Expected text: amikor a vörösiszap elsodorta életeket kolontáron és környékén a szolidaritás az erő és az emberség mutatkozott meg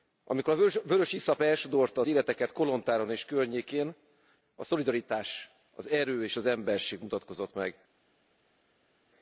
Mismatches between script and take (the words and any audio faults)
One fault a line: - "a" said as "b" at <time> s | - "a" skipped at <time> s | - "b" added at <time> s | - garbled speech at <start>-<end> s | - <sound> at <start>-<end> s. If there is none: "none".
none